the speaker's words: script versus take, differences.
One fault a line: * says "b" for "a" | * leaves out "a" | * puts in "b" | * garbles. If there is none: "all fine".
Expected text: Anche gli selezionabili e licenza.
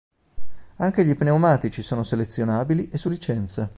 * puts in "pneumatici sono"
* puts in "su"